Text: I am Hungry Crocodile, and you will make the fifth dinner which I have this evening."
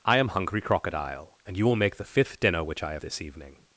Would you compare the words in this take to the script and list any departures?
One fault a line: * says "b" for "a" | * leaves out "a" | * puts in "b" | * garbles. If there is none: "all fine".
all fine